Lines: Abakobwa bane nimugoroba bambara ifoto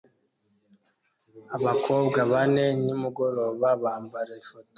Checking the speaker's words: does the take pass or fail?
pass